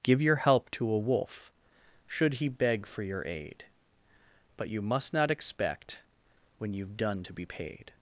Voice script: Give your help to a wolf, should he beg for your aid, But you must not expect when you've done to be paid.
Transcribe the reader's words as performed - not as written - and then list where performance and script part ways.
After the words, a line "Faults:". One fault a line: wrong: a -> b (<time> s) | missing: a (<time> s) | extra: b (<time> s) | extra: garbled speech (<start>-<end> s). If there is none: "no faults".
Give your help to a wolf, should he beg for your aid, But you must not expect when you've done to be paid.
Faults:
no faults